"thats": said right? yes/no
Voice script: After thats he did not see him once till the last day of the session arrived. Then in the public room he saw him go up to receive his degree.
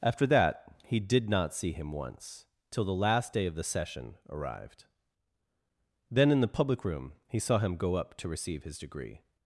no